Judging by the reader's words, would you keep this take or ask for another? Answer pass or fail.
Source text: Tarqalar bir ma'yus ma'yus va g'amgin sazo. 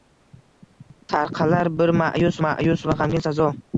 pass